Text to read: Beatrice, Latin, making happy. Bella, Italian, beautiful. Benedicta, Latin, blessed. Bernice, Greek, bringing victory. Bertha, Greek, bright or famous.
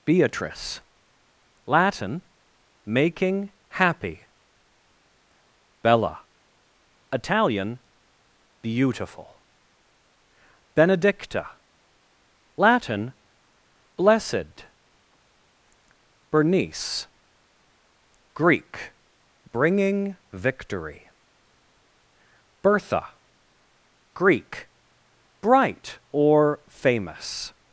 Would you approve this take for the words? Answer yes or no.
yes